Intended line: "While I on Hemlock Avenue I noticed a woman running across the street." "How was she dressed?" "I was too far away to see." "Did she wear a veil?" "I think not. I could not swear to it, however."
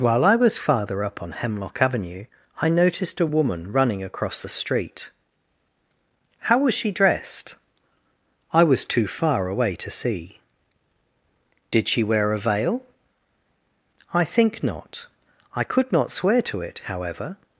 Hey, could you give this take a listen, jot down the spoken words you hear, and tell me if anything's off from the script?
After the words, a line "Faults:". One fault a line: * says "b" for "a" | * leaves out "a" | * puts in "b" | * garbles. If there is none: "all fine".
"While I was farther up on Hemlock Avenue I noticed a woman running across the street." "How was she dressed?" "I was too far away to see." "Did she wear a veil?" "I think not. I could not swear to it, however."
Faults:
* puts in "was farther up"